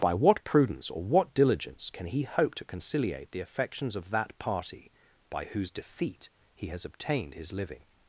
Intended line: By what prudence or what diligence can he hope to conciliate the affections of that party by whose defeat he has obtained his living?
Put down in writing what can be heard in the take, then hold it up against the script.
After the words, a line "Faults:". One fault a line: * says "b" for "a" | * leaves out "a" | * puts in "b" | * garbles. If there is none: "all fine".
By what prudence or what diligence can he hope to conciliate the affections of that party by whose defeat he has obtained his living?
Faults:
all fine